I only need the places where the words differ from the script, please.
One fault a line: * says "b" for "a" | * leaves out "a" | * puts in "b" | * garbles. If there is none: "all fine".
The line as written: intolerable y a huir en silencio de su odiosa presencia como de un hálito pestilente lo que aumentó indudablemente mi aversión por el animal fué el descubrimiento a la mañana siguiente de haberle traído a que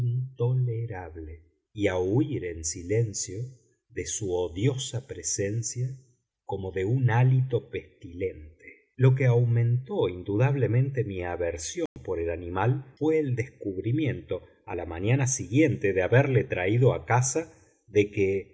* puts in "casa de"